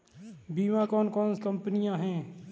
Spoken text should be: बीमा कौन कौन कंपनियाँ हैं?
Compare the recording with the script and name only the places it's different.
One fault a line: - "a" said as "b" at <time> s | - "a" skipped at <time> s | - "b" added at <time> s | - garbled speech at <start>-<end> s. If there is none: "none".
none